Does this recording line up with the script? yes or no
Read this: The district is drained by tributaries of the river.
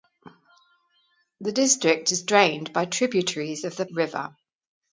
yes